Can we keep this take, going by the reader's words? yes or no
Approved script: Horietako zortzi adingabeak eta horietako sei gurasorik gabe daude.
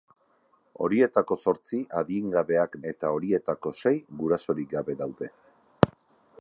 yes